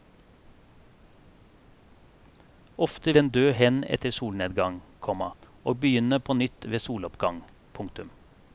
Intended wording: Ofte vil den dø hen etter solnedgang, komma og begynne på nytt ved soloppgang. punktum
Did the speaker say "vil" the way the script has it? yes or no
no